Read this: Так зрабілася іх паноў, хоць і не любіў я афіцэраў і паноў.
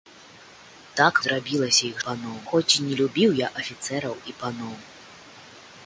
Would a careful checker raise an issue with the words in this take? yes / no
no